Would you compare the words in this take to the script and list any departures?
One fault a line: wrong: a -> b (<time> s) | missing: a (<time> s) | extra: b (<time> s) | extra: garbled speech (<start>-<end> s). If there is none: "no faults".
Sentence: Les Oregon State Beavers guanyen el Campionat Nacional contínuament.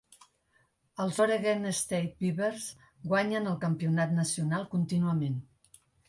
wrong: Les -> Els (1.0 s)